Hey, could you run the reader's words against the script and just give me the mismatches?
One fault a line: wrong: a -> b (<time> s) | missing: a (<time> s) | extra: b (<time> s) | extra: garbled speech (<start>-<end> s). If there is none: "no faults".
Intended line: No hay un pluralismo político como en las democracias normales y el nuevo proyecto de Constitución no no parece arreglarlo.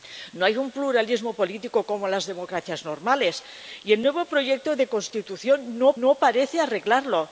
no faults